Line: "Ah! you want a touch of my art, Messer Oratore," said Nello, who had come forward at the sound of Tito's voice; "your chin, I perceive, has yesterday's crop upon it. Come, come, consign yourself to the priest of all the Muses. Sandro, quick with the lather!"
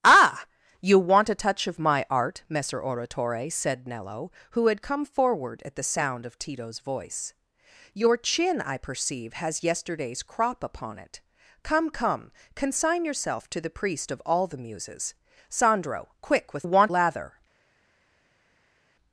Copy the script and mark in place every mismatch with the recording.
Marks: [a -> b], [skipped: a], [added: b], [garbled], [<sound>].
"Ah! you want a touch of my art, Messer Oratore," said Nello, who had come forward at the sound of Tito's voice; "your chin, I perceive, has yesterday's crop upon it. Come, come, consign yourself to the priest of all the Muses. Sandro, quick with [the -> want] lather!"